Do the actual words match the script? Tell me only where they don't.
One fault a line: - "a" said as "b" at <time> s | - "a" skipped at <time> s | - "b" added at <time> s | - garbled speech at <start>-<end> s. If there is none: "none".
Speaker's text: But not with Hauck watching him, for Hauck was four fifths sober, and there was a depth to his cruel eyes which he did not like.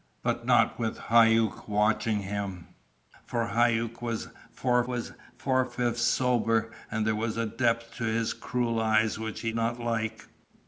- "was four" added at 4.9 s
- "did" skipped at 9.5 s